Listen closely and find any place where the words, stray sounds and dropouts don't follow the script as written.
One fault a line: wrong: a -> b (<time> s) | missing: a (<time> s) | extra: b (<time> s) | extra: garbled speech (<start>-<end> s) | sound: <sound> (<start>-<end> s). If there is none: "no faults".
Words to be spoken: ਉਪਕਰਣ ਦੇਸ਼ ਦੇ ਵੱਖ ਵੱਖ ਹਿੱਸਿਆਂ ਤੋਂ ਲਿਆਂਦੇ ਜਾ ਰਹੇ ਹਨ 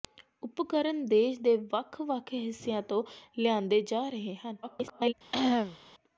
extra: garbled speech (4.6-5.1 s)
sound: cough (5.3-5.8 s)